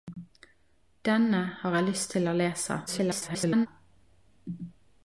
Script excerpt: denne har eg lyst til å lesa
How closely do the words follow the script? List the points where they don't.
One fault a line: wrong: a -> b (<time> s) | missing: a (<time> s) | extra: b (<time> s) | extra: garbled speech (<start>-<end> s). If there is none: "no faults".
extra: garbled speech (2.9-3.7 s)